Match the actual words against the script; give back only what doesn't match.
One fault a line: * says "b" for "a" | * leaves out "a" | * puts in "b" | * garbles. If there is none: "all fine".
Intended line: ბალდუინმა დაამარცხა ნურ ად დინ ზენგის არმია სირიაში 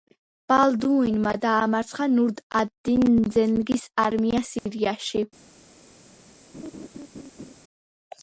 all fine